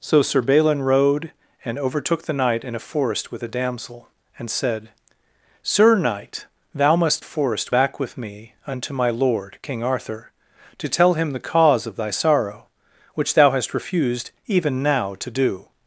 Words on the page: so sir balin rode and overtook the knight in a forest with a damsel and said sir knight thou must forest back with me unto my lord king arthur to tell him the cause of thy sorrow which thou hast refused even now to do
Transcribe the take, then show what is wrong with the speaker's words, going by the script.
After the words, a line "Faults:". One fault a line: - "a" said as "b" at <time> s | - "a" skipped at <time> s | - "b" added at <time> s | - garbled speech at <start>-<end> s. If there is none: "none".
so sir balin rode and overtook the knight in a forest with a damsel and said sir knight thou must forest back with me unto my lord king arthur to tell him the cause of thy sorrow which thou hast refused even now to do
Faults:
none